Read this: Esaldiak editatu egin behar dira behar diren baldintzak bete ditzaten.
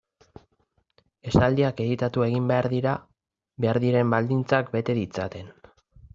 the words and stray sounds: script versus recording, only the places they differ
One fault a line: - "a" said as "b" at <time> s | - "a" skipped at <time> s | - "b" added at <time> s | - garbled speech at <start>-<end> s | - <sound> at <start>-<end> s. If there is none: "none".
none